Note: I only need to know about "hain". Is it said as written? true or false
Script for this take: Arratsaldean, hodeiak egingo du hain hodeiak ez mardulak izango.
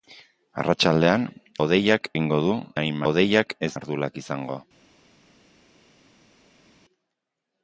true